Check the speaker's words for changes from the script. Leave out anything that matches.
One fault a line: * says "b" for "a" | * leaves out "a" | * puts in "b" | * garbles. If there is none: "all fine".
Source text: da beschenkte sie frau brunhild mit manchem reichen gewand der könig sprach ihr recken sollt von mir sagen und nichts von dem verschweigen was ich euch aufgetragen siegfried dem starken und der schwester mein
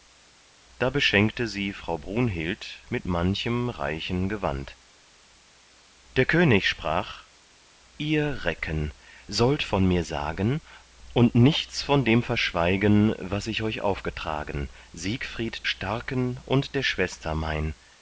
* leaves out "dem"